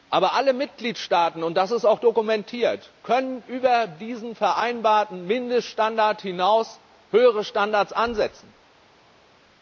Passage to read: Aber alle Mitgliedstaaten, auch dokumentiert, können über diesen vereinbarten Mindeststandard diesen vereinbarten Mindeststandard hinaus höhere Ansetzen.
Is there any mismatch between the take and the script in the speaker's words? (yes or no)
yes